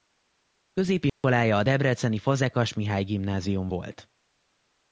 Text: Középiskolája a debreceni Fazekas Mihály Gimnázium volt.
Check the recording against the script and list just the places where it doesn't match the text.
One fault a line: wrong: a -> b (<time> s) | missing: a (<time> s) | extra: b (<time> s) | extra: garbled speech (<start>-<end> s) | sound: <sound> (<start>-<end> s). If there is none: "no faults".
sound: dropout (1.1-1.2 s)